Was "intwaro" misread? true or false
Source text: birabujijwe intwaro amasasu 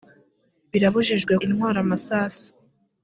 false